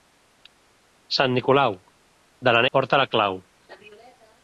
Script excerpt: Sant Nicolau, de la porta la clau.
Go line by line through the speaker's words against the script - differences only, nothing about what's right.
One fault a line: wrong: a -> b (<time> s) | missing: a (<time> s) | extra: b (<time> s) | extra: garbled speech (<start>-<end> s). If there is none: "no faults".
no faults